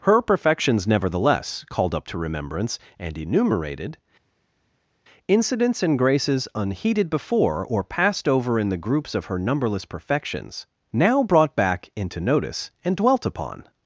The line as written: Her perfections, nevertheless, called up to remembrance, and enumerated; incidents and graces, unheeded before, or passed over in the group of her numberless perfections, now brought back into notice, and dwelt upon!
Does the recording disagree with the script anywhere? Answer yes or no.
yes